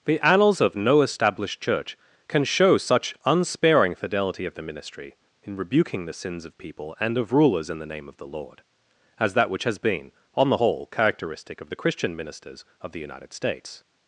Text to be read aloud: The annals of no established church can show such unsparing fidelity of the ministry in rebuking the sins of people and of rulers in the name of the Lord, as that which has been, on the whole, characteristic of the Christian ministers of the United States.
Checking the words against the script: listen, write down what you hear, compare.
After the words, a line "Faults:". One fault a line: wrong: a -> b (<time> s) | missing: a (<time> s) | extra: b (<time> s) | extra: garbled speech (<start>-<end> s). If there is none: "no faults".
The annals of no established church can show such unsparing fidelity of the ministry in rebuking the sins of people and of rulers in the name of the Lord, as that which has been, on the whole, characteristic of the Christian ministers of the United States.
Faults:
no faults